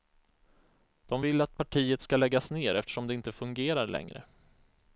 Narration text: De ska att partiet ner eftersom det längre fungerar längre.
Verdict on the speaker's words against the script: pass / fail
fail